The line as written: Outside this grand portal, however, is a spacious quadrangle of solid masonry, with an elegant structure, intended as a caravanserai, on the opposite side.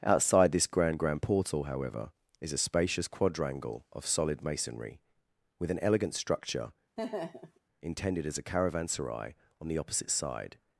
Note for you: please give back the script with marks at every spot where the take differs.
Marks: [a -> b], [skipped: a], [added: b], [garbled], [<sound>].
Outside this grand [added: grand] portal, however, is a spacious quadrangle of solid masonry, with an elegant structure, [laugh] intended as a caravanserai, on the opposite side.